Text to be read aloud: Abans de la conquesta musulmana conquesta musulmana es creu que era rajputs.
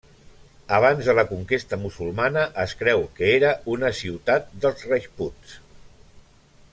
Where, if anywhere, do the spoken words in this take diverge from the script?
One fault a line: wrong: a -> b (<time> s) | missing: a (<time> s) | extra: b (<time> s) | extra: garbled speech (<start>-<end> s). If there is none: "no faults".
missing: conquesta musulmana (2.5 s)
extra: una ciutat dels (3.8 s)